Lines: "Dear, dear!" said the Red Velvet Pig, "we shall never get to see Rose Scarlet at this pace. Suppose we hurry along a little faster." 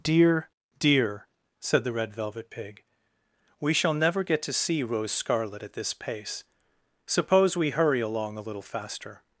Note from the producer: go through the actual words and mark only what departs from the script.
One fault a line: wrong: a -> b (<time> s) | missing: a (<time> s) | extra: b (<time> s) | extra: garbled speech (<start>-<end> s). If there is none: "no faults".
no faults